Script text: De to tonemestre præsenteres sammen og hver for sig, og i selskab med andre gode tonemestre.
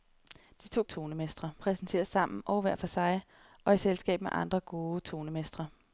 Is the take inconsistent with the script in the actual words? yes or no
no